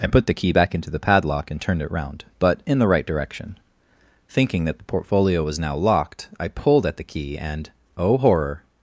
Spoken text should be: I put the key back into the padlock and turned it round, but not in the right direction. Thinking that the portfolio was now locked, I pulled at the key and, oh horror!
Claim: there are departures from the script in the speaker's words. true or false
true